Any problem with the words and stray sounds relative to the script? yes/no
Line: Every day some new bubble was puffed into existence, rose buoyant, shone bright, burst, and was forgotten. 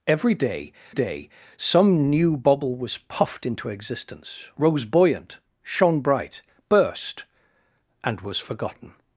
yes